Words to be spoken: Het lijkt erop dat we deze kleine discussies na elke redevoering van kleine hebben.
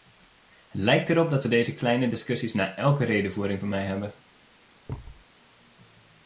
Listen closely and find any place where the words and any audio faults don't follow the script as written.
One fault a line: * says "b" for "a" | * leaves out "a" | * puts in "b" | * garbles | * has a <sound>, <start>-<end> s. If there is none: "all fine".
* says "mij" for "kleine"
* has a thud, 4.9-5.2 s